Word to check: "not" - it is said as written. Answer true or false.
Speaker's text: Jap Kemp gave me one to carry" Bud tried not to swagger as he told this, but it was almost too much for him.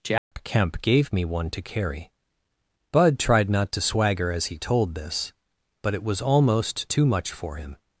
true